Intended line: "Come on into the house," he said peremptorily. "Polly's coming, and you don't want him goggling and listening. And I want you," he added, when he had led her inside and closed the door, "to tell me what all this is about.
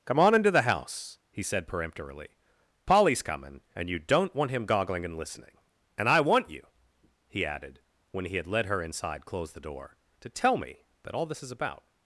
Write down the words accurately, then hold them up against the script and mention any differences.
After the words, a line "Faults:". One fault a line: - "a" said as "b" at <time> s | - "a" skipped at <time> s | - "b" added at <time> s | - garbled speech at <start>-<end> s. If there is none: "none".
"Come on into the house," he said peremptorily. "Polly's coming, and you don't want him goggling and listening. And I want you," he added, when he had led her inside closed the door, "to tell me that all this is about.
Faults:
- "and" skipped at 9.2 s
- "what" said as "that" at 11.0 s